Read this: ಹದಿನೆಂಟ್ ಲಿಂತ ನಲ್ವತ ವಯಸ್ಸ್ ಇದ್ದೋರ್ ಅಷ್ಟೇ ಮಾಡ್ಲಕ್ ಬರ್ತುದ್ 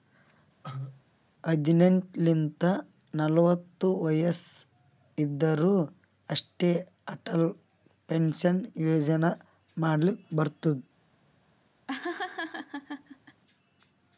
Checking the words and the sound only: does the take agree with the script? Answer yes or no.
no